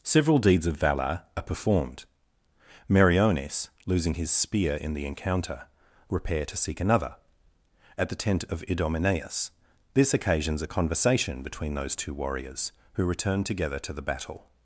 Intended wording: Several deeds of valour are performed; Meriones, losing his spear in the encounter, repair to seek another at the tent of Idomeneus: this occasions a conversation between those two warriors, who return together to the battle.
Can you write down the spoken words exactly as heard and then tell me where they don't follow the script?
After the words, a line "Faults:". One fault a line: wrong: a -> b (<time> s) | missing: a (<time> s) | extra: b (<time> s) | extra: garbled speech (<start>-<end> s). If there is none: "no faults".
Several deeds of valour are performed; Meriones, losing his spear in the encounter, repair to seek another at the tent of Idomeneus: this occasions a conversation between those two warriors, who return together to the battle.
Faults:
no faults